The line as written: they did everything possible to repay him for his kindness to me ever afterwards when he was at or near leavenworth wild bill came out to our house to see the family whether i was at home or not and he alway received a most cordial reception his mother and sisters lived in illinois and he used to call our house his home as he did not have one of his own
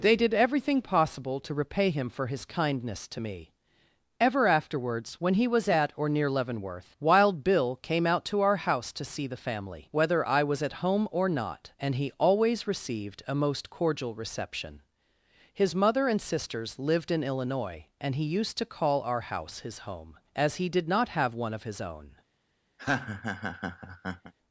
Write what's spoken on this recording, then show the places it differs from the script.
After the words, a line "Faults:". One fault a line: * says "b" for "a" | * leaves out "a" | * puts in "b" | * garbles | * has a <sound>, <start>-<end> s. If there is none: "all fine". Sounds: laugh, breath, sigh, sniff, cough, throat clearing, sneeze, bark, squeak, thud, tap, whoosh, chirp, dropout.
they did everything possible to repay him for his kindness to me ever afterwards when he was at or near leavenworth wild bill came out to our house to see the family whether i was at home or not and he always received a most cordial reception his mother and sisters lived in illinois and he used to call our house his home as he did not have one of his own
Faults:
* says "always" for "alway"
* has a laugh, 22.8-24.3 s